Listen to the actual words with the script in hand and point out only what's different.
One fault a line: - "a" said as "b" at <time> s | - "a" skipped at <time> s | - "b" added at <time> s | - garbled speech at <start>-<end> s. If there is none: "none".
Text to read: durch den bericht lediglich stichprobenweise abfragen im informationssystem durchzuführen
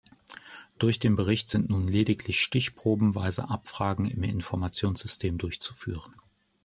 - "sind nun" added at 1.5 s